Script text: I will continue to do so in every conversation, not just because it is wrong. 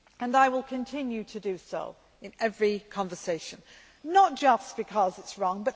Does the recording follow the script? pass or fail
pass